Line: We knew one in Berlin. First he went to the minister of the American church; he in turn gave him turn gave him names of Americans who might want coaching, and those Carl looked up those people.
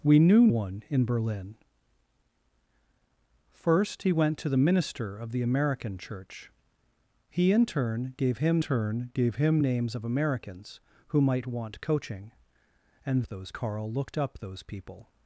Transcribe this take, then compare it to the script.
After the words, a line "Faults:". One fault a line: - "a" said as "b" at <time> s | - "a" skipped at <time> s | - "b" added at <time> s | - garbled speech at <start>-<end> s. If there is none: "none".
We knew one in Berlin. First he went to the minister of the American church; he in turn gave him turn gave him names of Americans who might want coaching, and those Carl looked up those people.
Faults:
none